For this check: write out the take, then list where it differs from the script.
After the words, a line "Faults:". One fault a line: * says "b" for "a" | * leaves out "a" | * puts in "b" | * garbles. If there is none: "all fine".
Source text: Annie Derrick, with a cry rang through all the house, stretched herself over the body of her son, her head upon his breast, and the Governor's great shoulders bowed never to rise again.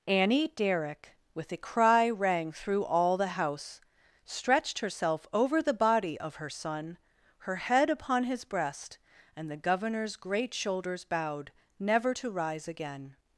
Annie Derrick, with a cry rang through all the house, stretched herself over the body of her son, her head upon his breast, and the Governor's great shoulders bowed never to rise again.
Faults:
all fine